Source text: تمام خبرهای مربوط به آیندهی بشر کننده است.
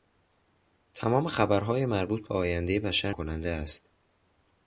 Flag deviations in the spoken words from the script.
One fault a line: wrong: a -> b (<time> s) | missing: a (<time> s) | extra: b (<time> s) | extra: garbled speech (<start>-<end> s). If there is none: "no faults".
no faults